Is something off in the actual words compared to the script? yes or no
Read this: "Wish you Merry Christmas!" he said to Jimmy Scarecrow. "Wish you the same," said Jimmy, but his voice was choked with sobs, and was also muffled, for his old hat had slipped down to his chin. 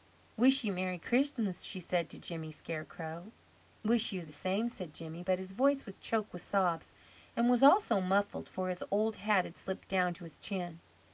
yes